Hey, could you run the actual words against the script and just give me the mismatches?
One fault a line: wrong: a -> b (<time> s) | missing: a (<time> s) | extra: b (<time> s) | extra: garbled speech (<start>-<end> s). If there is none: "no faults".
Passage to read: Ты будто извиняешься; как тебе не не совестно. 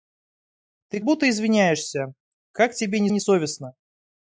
no faults